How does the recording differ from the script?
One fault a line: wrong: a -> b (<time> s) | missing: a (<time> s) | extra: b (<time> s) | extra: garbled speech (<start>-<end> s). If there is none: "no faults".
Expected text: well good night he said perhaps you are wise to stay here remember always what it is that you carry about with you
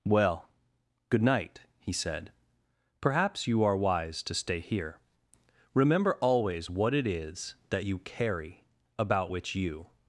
wrong: with -> which (9.3 s)